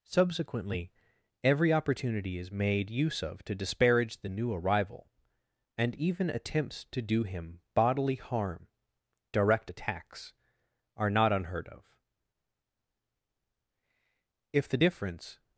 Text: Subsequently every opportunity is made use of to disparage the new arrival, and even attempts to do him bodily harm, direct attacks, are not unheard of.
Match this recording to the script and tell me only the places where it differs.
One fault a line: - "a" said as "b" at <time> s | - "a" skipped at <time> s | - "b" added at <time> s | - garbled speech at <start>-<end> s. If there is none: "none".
- "If the difference" added at 14.5 s